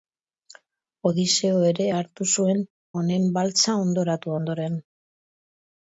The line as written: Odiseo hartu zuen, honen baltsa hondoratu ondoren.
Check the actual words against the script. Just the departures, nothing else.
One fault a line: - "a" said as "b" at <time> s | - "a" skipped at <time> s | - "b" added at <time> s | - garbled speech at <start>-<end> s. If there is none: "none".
- "ere" added at 1.7 s